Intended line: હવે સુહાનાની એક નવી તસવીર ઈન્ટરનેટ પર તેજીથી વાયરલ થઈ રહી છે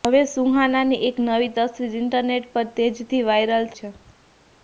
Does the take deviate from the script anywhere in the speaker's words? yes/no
yes